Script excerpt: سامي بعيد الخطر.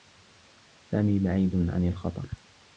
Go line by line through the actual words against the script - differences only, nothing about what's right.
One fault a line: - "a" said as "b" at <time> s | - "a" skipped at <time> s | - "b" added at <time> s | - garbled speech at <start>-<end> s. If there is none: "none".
- "عن" added at 1.6 s